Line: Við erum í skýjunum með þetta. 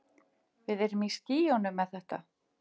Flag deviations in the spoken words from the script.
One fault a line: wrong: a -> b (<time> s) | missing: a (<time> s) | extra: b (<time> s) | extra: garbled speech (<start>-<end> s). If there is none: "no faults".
no faults